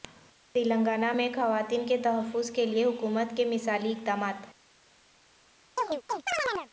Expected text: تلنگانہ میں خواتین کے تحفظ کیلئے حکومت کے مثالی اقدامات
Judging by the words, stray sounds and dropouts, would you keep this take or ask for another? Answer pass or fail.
fail